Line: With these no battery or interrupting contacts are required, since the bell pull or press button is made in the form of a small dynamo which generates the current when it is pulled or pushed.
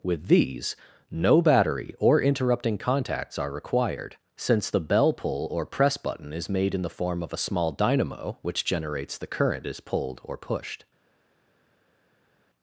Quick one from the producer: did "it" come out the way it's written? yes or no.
no